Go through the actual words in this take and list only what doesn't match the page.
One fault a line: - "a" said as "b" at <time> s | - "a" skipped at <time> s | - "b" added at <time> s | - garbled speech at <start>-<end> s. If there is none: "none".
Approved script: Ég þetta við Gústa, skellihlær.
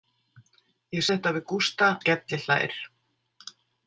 none